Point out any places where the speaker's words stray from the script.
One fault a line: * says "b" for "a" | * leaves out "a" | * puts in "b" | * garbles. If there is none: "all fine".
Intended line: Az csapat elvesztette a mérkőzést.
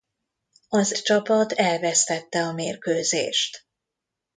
all fine